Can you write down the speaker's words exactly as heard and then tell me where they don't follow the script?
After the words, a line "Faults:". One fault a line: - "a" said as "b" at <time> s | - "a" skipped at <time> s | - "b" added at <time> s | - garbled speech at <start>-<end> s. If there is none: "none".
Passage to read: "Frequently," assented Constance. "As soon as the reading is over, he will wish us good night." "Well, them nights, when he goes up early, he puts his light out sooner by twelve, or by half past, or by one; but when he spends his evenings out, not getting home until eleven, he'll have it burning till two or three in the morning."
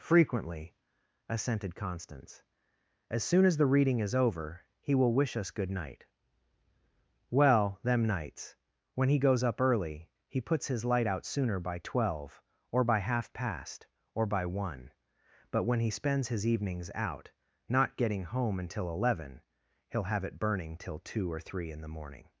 "Frequently," assented Constance. "As soon as the reading is over, he will wish us good night." "Well, them nights, when he goes up early, he puts his light out sooner by twelve, or by half past, or by one; but when he spends his evenings out, not getting home until eleven, he'll have it burning till two or three in the morning."
Faults:
none